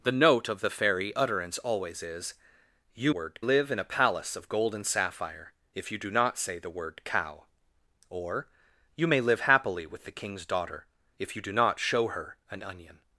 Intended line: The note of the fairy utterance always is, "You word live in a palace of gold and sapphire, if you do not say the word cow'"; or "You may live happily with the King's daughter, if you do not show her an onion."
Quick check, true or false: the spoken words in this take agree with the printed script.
true